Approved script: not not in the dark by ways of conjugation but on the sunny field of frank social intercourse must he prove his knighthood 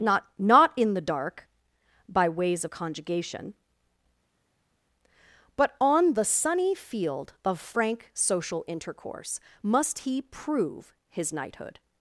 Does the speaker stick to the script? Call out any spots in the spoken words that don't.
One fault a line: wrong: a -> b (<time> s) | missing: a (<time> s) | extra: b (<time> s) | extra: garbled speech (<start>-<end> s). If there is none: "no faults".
no faults